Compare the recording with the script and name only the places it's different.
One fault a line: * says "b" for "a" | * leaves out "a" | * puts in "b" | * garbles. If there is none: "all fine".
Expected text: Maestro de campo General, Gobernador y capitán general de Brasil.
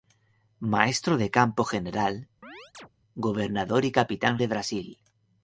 * leaves out "general"